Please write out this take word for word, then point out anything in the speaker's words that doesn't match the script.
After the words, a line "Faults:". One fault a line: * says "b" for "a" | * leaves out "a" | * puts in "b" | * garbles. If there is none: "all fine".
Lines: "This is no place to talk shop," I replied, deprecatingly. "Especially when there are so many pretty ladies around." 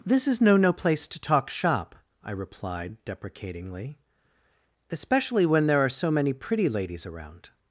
"This is no no place to talk shop," I replied, deprecatingly. "Especially when there are so many pretty ladies around."
Faults:
* puts in "no"